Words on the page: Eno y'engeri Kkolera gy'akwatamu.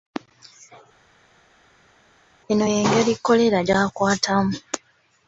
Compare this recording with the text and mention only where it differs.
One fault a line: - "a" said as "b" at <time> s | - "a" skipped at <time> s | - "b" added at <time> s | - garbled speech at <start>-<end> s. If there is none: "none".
none